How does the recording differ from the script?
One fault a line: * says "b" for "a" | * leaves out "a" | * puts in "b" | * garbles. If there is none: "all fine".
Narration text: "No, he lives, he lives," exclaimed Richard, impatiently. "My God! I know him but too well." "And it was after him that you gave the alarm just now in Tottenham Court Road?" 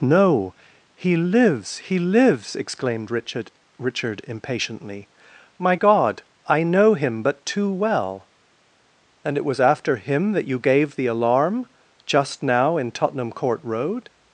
* puts in "Richard"